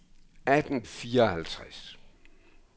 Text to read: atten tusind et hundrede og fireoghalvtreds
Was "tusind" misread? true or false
true